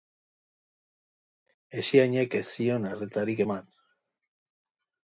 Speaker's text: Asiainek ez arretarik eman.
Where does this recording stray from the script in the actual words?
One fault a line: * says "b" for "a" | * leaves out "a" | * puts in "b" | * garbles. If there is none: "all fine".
* puts in "zion"